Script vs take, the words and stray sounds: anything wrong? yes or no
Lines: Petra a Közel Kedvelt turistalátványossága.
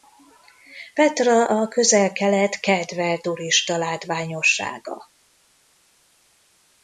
yes